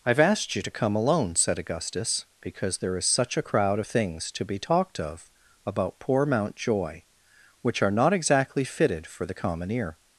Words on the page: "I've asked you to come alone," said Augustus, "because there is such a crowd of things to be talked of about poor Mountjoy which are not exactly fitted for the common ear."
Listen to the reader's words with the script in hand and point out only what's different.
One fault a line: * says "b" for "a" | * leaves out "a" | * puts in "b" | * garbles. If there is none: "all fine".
all fine